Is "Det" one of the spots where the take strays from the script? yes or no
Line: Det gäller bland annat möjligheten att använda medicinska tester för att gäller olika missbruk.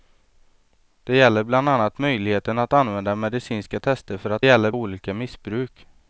no